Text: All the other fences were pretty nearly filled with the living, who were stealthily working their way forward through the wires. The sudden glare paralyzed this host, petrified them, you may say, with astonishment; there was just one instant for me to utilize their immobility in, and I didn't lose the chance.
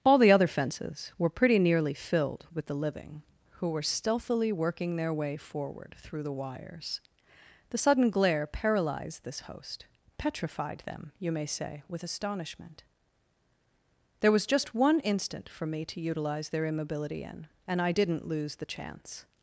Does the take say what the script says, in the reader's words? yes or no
yes